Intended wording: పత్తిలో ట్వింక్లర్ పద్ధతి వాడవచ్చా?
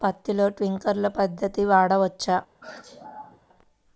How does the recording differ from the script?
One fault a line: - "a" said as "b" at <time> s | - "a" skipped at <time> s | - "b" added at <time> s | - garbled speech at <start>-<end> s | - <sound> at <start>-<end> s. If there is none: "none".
- sneeze at 2.6-3.4 s